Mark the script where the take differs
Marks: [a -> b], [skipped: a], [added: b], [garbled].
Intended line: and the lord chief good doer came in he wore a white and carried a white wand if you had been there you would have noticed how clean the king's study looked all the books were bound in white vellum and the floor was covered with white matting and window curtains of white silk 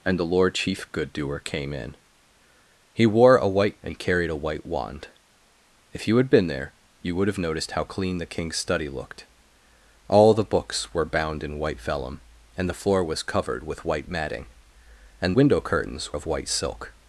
and the lord chief good doer came in he wore a white and carried a white wand if you had been there you would have noticed how clean the king's study looked all the books were bound in white vellum and the floor was covered with white matting and window curtains of white silk